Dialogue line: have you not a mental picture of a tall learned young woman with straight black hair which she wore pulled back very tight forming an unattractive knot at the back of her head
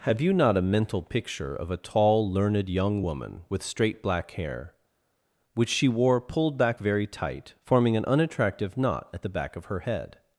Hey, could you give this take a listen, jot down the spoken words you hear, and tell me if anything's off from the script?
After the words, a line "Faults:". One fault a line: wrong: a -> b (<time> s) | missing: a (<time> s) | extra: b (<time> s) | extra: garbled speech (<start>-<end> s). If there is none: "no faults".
have you not a mental picture of a tall learned young woman with straight black hair which she wore pulled back very tight forming an unattractive knot at the back of her head
Faults:
no faults